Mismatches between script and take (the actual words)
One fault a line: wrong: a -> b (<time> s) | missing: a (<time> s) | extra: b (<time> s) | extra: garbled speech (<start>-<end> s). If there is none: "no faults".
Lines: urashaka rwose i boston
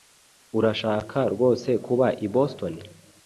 extra: kuba (1.9 s)